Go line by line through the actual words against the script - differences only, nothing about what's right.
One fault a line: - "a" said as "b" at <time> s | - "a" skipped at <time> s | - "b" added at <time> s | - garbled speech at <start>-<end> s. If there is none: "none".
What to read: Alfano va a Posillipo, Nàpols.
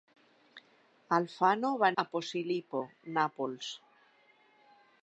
none